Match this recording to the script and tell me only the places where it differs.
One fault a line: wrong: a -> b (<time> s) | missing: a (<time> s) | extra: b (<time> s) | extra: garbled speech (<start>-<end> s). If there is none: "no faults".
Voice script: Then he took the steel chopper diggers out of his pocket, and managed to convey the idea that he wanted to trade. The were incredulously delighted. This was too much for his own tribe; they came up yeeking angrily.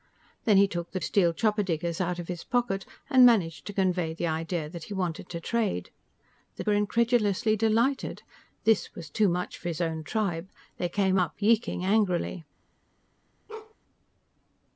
no faults